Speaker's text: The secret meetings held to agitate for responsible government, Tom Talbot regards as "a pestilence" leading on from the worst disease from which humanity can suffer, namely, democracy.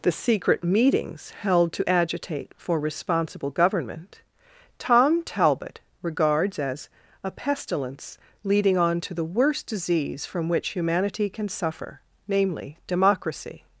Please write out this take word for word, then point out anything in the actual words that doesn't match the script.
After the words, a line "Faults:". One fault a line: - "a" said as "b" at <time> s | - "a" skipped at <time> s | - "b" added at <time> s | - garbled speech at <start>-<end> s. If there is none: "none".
The secret meetings held to agitate for responsible government, Tom Talbot regards as "a pestilence" leading on to the worst disease from which humanity can suffer, namely, democracy.
Faults:
- "from" said as "to" at 9.0 s